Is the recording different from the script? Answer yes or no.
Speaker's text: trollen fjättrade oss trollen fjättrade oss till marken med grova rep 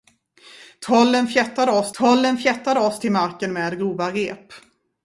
no